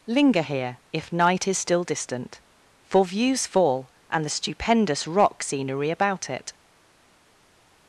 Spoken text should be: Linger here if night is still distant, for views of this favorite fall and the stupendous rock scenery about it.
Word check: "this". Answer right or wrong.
wrong